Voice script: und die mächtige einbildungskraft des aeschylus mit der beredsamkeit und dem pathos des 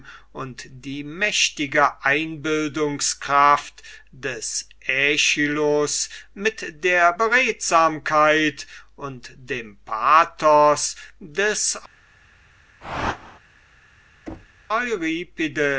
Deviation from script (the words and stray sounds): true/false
true